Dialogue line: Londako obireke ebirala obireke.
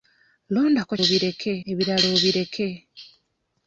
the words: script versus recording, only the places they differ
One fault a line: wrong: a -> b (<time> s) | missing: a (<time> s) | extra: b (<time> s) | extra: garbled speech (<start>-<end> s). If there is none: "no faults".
no faults